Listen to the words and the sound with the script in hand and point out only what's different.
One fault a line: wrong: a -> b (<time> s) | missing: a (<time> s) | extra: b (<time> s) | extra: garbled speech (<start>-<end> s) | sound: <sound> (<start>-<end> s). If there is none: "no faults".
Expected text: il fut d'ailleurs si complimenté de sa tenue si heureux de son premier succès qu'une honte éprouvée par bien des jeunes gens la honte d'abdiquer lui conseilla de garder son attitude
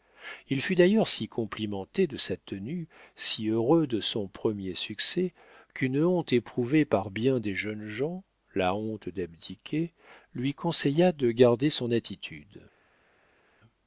no faults